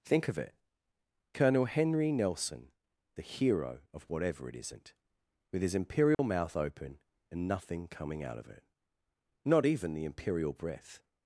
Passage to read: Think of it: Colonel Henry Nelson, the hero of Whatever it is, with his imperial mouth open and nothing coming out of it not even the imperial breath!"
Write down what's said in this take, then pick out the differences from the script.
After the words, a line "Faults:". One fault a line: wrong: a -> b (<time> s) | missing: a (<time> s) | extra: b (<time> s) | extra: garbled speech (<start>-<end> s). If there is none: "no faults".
Think of it: Colonel Henry Nelson, the hero of Whatever it isn't, with his imperial mouth open and nothing coming out of it not even the imperial breath!"
Faults:
wrong: is -> isn't (4.5 s)